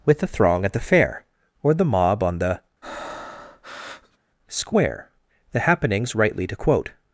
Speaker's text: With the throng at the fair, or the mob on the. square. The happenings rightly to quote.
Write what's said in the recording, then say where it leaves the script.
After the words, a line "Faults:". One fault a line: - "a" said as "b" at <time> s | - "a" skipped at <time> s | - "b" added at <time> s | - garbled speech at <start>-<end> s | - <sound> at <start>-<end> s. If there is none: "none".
With the throng at the fair, or the mob on the. square. The happenings rightly to quote.
Faults:
- breath at 2.8-4.2 s